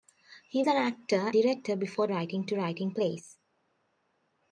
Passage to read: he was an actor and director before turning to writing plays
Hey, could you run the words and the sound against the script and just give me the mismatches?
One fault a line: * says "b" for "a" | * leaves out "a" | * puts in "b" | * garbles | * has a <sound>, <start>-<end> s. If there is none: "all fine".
* leaves out "was"
* leaves out "and"
* says "writing" for "turning"